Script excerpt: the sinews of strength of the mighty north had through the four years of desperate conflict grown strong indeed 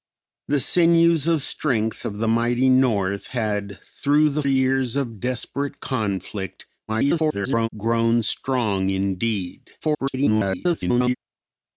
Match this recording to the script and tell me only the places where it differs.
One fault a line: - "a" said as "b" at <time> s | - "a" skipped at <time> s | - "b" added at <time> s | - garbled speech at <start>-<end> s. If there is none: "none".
- "four" skipped at 4.4 s
- garbled speech at 6.9-7.7 s
- garbled speech at 9.8-11.2 s